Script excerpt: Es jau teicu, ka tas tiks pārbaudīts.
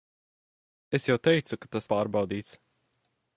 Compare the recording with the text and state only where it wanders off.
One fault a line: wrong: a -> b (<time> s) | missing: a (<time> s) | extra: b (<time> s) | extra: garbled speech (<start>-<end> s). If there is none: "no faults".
missing: tiks (1.9 s)